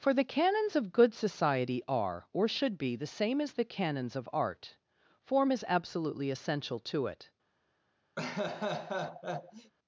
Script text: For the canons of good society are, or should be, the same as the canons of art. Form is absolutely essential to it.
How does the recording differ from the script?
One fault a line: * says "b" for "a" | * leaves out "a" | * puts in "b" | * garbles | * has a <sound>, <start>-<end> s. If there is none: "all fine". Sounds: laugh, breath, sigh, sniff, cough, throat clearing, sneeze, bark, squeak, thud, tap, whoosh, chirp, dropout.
* has a laugh, 8.2-9.7 s